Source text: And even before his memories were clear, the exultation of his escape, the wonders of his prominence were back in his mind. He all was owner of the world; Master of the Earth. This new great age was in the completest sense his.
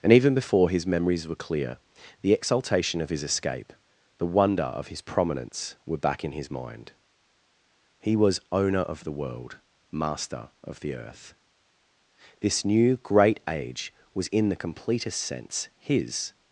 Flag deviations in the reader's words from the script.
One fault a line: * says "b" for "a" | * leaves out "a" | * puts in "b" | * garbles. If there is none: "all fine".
* says "wonder" for "wonders"
* leaves out "all"